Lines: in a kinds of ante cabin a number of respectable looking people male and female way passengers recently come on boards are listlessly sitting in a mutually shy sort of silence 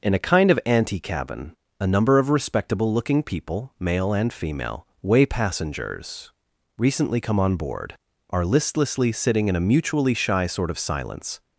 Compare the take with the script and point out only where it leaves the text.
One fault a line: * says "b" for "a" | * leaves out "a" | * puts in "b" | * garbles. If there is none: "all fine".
* says "kind" for "kinds"
* says "board" for "boards"